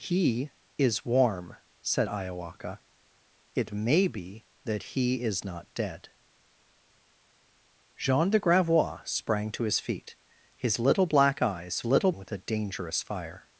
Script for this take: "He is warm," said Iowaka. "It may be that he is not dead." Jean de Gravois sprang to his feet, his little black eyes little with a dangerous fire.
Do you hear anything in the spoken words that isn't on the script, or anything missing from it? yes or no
no